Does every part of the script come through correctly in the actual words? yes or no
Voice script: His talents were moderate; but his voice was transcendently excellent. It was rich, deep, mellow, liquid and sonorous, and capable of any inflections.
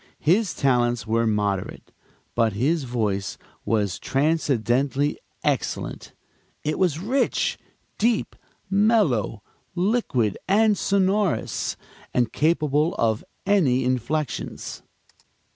yes